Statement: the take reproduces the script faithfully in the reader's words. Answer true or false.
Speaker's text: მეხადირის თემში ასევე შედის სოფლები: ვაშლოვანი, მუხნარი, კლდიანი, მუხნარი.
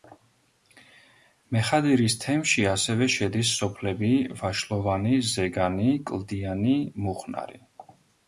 false